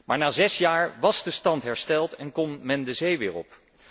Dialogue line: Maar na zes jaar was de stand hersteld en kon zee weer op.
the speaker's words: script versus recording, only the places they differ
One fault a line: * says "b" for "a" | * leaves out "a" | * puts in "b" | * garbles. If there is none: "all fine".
* puts in "men de"